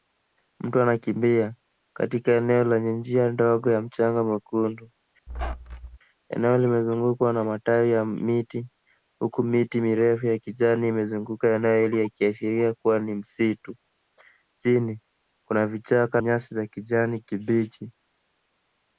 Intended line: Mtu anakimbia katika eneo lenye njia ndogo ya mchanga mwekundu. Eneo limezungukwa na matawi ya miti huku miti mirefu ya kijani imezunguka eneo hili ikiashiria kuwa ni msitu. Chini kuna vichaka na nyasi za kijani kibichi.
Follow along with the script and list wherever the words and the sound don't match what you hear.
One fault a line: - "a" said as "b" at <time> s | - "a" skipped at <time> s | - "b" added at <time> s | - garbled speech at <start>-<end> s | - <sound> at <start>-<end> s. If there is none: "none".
- squeak at 5.3-6.0 s
- "na" skipped at 16.2 s